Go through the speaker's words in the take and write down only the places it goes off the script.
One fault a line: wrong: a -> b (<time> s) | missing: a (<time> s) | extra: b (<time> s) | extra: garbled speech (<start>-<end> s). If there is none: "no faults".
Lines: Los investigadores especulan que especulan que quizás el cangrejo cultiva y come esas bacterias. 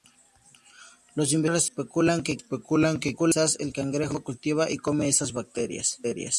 no faults